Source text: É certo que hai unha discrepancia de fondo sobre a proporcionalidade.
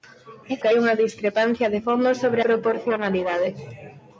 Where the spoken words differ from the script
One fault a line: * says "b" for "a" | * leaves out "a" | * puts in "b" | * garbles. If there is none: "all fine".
* leaves out "certo"
* leaves out "a"